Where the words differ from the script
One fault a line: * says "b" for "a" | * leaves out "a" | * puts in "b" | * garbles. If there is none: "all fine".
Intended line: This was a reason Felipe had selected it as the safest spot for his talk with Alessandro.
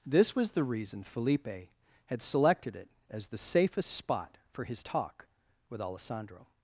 * says "the" for "a"